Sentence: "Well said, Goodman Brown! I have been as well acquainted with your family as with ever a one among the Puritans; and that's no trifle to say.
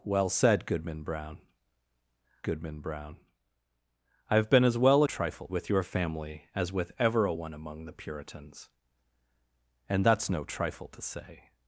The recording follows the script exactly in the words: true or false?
false